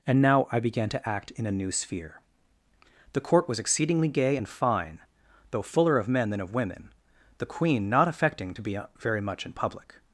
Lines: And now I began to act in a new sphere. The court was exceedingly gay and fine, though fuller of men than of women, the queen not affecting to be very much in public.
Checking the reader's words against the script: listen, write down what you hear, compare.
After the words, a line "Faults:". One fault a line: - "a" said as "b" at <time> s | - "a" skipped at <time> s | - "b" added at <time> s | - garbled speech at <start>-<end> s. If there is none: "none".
And now I began to act in a new sphere. The court was exceedingly gay and fine, though fuller of men than of women, the queen not affecting to be very much in public.
Faults:
none